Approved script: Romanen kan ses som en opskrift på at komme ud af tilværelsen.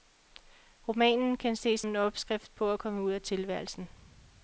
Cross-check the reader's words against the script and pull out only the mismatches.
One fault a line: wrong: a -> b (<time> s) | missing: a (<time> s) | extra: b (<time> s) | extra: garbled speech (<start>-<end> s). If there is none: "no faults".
missing: som (1.8 s)